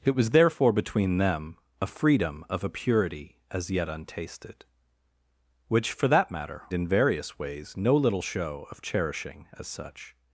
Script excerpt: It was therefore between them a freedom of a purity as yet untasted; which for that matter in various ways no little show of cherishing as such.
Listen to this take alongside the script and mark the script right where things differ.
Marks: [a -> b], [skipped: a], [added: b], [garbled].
It was therefore between them a freedom of a purity as yet untasted; which for that matter in various ways no little show of cherishing as such.